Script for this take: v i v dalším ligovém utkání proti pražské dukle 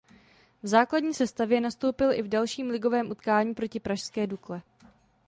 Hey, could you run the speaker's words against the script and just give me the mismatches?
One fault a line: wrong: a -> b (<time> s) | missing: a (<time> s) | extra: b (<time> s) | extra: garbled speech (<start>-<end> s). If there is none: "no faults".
extra: základní sestavě nastoupil (0.7 s)